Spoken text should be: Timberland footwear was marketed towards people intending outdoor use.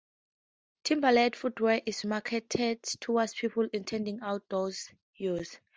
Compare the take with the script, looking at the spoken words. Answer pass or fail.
fail